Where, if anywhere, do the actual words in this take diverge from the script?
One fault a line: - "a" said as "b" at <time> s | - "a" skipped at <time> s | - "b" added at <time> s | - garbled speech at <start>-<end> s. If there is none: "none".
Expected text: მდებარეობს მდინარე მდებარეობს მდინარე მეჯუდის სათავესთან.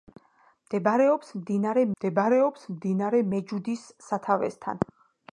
none